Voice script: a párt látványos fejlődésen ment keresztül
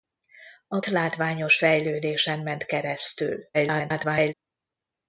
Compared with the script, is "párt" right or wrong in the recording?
wrong